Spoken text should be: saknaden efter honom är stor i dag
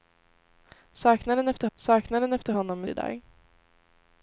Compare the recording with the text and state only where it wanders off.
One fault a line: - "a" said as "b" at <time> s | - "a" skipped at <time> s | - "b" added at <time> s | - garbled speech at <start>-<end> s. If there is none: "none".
- "saknaden efter" added at 1.7 s
- "stor" skipped at 2.9 s